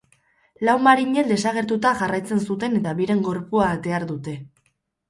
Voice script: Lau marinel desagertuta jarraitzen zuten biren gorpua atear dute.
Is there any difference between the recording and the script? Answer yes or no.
yes